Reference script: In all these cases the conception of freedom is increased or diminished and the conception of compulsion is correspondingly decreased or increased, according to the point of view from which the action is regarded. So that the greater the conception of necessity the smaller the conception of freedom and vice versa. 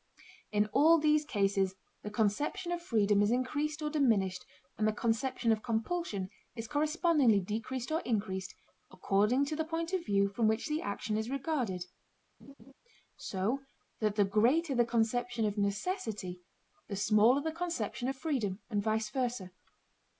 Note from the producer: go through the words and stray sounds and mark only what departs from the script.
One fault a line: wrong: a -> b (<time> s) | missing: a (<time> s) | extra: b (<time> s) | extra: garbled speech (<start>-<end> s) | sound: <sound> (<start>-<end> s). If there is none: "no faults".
sound: laugh (12.4-12.7 s)